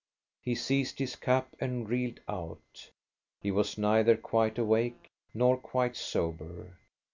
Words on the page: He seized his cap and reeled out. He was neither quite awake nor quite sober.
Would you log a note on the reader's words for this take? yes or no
no